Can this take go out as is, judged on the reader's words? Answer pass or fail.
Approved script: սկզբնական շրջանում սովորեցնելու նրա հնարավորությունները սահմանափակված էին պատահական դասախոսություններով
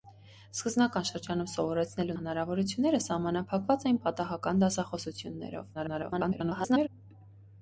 fail